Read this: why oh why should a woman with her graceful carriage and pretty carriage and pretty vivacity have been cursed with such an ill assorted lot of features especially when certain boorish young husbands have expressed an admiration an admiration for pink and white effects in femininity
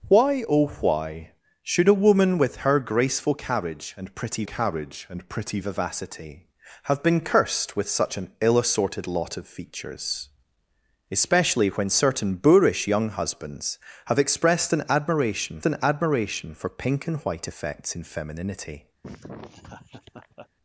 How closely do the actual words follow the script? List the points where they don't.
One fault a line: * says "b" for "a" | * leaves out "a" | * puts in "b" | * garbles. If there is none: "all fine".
all fine